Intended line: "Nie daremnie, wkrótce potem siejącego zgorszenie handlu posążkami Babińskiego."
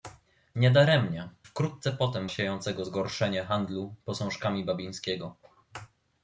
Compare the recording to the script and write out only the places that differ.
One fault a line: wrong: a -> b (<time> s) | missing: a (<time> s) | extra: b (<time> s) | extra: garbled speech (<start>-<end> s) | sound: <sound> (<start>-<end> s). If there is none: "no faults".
no faults